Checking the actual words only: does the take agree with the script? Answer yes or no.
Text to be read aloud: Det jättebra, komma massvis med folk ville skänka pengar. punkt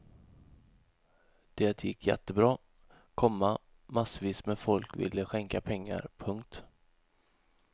no